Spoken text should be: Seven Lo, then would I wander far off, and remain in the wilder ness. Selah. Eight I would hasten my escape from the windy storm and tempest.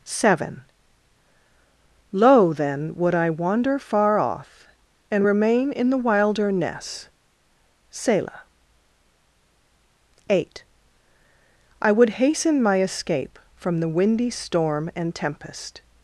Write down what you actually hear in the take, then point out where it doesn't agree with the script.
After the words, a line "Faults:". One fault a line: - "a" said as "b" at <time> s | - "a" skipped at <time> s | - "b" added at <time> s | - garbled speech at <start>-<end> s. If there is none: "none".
Seven Lo, then would I wander far off, and remain in the wilder ness. Selah. Eight I would hasten my escape from the windy storm and tempest.
Faults:
none